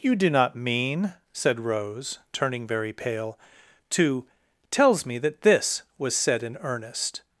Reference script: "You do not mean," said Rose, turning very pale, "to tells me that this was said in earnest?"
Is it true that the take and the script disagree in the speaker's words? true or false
false